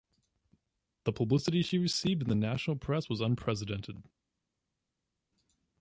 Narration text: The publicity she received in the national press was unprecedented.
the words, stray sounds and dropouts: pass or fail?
pass